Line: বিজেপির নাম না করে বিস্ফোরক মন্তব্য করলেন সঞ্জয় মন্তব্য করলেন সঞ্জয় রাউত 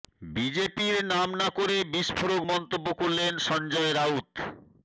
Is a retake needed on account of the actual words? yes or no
yes